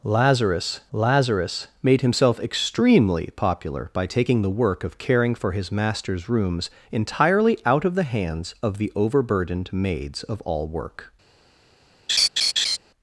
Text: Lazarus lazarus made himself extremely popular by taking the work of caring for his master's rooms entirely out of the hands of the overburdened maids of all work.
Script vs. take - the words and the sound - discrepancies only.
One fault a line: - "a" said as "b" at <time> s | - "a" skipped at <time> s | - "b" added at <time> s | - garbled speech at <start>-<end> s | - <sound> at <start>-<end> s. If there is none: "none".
- laugh at 12.1-12.8 s